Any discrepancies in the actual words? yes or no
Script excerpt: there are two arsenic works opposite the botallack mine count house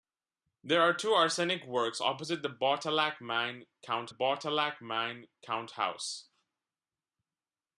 yes